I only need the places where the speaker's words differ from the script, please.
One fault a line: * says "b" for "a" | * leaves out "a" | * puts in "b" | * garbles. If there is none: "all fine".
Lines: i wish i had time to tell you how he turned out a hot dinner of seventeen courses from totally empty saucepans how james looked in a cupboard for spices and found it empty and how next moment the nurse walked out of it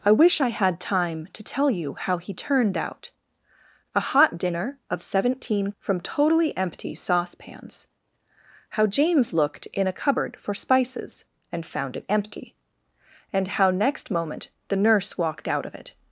* leaves out "courses"